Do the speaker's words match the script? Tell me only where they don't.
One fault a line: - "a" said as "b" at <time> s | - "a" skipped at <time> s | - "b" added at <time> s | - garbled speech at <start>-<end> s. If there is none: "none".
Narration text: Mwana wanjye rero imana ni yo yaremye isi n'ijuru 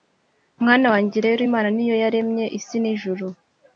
none